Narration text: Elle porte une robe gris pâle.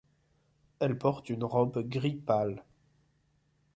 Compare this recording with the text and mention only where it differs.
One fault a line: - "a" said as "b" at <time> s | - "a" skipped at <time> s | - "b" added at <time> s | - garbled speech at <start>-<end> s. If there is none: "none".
none